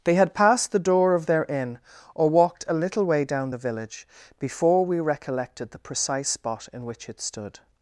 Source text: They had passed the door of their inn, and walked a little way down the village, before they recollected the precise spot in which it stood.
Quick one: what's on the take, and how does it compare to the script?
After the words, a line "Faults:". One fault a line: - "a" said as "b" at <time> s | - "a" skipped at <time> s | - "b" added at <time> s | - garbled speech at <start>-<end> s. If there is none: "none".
They had passed the door of their inn, or walked a little way down the village, before we recollected the precise spot in which it stood.
Faults:
- "and" said as "or" at 2.1 s
- "they" said as "we" at 4.8 s